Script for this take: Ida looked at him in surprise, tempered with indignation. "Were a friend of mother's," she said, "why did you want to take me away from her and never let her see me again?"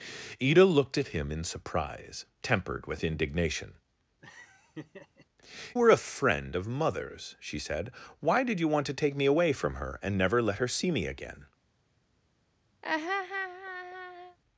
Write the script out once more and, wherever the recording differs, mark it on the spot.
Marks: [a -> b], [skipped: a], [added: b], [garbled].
Ida looked at him in surprise, tempered with indignation. "Were a friend of mother's," she said, "why did you want to take me away from her and never let her see me again?"